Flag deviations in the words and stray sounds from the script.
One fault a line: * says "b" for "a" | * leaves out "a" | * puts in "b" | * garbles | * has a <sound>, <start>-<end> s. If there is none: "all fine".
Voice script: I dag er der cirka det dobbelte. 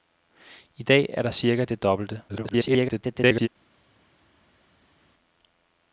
* garbles